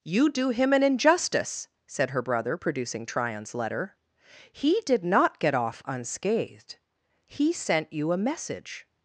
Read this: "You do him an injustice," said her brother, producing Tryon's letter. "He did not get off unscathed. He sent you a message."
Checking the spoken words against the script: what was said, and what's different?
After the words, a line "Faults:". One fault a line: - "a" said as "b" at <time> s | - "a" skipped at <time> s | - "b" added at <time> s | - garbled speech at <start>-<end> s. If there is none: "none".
"You do him an injustice," said her brother, producing Tryon's letter. "He did not get off unscathed. He sent you a message."
Faults:
none